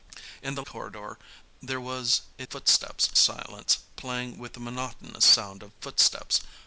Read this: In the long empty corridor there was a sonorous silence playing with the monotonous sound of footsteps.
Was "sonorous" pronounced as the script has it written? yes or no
no